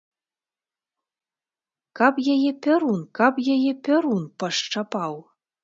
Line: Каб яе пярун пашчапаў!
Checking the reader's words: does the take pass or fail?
fail